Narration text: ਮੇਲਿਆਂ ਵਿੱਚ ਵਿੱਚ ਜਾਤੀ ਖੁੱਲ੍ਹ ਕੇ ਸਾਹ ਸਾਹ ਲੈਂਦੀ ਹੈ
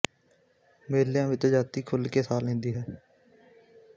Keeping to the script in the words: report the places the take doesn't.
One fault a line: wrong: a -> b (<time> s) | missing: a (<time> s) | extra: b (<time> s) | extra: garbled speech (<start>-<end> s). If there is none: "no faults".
missing: ਵਿੱਚ (1.4 s)
missing: ਸਾਹ (2.4 s)